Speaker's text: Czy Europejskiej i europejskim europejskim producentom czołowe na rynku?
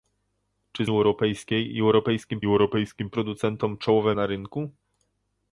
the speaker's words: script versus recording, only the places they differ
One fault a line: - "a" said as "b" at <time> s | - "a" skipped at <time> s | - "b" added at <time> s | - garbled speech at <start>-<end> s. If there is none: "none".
none